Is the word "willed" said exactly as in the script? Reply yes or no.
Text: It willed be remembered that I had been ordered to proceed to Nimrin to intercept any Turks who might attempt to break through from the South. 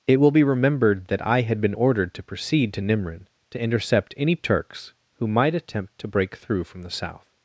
no